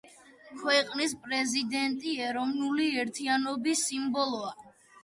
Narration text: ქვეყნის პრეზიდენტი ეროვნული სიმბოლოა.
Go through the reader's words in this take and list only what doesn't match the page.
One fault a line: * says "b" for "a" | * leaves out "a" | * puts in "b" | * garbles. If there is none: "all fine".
* puts in "ერთიანობის"